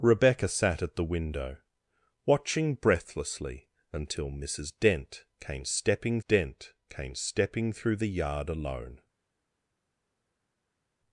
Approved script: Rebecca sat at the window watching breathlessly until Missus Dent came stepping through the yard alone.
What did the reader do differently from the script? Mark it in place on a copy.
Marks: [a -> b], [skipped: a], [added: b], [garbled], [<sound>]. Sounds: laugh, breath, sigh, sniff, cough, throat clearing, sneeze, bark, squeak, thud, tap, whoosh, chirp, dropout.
Rebecca sat at the window watching breathlessly until Missus Dent came stepping [added: Dent came stepping] through the yard alone.